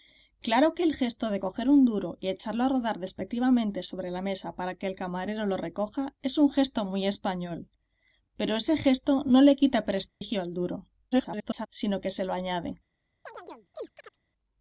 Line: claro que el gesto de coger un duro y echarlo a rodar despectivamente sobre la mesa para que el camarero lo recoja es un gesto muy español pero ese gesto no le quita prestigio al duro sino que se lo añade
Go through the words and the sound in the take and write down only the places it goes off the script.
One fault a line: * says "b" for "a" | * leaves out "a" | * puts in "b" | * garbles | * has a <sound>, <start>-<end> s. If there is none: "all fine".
* has a dropout, 10.1-10.2 s
* garbles
* has a chirp, 13.2-14.2 s